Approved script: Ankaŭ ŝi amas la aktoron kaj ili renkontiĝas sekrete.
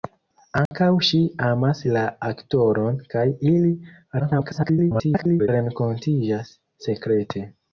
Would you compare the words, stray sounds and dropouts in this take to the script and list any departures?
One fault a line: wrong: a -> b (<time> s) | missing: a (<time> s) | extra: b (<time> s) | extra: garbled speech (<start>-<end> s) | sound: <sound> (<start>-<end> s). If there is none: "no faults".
sound: dropout (0.7-0.7 s)
extra: garbled speech (4.2-5.5 s)